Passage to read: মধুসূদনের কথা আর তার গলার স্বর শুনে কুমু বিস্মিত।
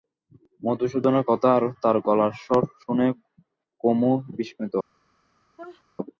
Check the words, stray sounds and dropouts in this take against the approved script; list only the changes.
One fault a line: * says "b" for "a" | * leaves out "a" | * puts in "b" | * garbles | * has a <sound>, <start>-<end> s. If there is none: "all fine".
* has a sneeze, 5.6-5.8 s